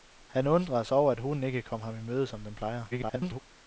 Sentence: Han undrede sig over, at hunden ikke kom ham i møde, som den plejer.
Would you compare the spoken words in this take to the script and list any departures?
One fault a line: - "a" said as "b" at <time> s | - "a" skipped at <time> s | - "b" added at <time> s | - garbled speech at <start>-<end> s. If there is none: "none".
- garbled speech at 2.9-3.4 s